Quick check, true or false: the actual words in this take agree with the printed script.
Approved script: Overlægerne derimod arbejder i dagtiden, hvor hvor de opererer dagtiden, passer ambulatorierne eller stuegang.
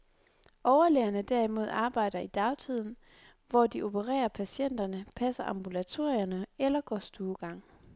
false